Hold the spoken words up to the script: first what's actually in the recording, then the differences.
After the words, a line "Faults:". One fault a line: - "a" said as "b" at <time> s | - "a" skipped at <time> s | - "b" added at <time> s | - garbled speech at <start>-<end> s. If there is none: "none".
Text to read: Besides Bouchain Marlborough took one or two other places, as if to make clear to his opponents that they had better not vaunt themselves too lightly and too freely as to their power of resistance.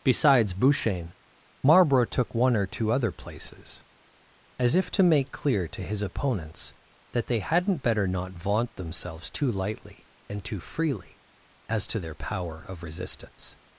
Besides Bouchain Marlborough took one or two other places, as if to make clear to his opponents that they hadn't better not vaunt themselves too lightly and too freely as to their power of resistance.
Faults:
- "had" said as "hadn't" at 7.4 s